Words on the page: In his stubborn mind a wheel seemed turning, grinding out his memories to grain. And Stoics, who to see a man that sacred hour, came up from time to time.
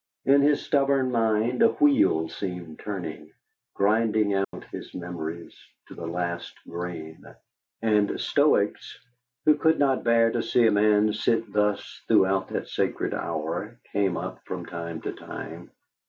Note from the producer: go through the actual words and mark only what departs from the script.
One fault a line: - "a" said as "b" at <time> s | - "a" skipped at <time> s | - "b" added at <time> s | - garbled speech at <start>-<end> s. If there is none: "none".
- "the last" added at 5.9 s
- "could not bear" added at 9.6 s
- "sit thus throughout" added at 11.1 s